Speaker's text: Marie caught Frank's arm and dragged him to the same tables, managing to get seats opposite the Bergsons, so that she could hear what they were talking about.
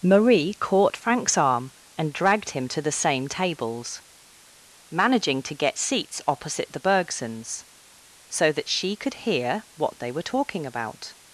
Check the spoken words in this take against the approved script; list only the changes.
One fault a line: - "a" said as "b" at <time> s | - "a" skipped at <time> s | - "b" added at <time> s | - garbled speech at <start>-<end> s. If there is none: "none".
none